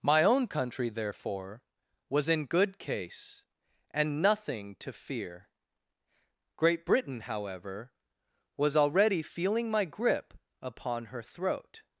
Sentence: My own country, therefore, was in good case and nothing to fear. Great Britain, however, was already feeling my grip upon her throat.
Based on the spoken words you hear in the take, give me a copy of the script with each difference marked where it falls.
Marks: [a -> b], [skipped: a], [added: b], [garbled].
My own country, therefore, was in good case and nothing to fear. Great Britain, however, was already feeling my grip upon her throat.